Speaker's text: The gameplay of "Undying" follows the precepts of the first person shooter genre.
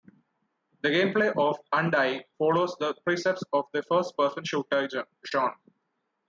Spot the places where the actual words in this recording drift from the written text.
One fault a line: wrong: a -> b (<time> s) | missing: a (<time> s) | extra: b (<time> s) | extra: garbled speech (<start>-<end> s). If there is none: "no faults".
no faults